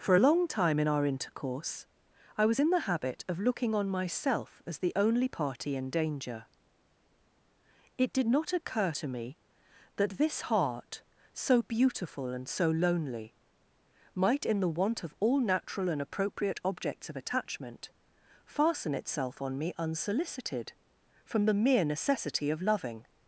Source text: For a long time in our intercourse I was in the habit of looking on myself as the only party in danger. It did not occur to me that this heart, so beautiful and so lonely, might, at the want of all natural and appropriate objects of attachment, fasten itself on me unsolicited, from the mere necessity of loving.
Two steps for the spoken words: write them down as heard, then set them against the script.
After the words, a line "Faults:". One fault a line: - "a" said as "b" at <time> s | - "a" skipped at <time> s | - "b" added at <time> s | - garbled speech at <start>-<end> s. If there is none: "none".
For a long time in our intercourse I was in the habit of looking on myself as the only party in danger. It did not occur to me that this heart, so beautiful and so lonely, might, in the want of all natural and appropriate objects of attachment, fasten itself on me unsolicited, from the mere necessity of loving.
Faults:
- "at" said as "in" at 14.5 s